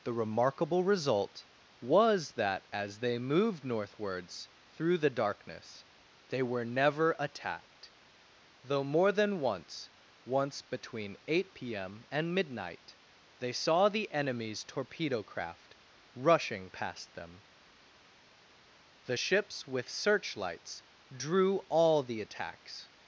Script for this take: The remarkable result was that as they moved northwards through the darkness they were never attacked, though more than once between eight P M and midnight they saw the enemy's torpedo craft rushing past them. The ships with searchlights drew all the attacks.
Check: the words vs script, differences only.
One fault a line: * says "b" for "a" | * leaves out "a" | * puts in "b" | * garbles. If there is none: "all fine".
* puts in "once"